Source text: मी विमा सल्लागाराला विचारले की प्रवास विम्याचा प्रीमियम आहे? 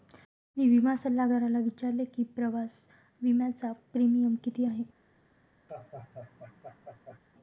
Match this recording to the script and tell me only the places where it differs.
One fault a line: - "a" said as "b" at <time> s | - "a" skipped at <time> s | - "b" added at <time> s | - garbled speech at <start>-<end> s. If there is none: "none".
- "किती" added at 4.4 s